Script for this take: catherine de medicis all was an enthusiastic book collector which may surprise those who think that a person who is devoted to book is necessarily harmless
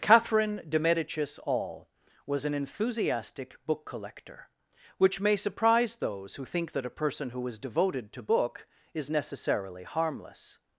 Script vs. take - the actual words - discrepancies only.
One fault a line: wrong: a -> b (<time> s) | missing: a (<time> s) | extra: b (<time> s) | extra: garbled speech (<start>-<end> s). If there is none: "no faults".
no faults